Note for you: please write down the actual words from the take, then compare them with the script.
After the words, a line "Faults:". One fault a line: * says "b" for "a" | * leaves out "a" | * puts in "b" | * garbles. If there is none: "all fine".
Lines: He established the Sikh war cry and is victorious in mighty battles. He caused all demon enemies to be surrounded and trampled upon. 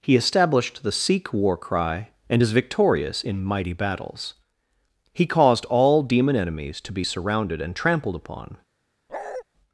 He established the Sikh war cry and is victorious in mighty battles. He caused all demon enemies to be surrounded and trampled upon.
Faults:
all fine